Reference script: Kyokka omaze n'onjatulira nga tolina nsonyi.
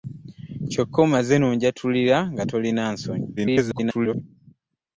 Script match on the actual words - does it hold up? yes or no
no